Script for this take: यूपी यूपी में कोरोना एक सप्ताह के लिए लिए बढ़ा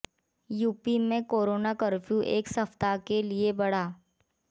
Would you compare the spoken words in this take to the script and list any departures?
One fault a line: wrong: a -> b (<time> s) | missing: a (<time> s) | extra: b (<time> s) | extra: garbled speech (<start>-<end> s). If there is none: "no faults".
missing: यूपी (1.0 s)
extra: कर्फ्यू (1.8 s)
missing: लिए (3.5 s)